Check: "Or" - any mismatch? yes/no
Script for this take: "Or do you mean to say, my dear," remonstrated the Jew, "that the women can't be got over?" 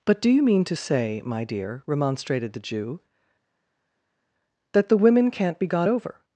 yes